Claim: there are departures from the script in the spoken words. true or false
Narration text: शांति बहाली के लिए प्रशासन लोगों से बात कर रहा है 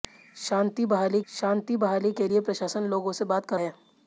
true